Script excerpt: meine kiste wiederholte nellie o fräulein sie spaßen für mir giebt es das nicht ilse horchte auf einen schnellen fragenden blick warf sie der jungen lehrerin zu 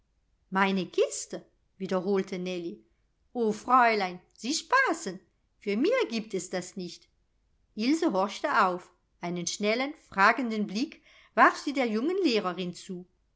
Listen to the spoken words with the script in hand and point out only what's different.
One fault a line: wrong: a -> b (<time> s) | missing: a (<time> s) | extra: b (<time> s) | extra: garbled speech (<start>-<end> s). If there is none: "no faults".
no faults